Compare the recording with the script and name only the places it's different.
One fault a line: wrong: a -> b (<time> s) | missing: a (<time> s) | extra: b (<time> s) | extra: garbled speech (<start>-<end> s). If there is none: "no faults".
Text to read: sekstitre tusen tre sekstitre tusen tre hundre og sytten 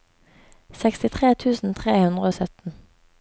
missing: sekstitre tusen tre (1.9 s)